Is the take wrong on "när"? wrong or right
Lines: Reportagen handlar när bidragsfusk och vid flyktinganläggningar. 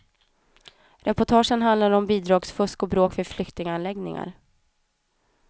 wrong